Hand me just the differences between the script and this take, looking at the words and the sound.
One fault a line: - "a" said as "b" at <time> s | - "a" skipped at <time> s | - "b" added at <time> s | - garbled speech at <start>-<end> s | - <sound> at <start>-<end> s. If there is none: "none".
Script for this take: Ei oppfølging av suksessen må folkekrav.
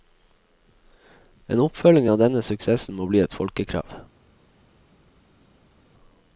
- "Ei" said as "En" at 1.5 s
- "denne" added at 2.2 s
- "bli et" added at 3.1 s